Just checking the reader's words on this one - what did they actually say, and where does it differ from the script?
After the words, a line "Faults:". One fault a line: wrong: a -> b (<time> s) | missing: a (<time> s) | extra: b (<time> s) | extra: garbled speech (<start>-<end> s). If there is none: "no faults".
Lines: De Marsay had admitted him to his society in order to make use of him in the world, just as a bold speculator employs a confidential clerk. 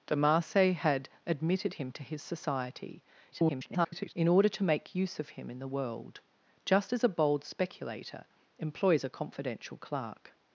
De Marsay had admitted him to his society [garbled] in order to make use of him in the world, just as a bold speculator employs a confidential clerk.
Faults:
extra: garbled speech (3.3-4.1 s)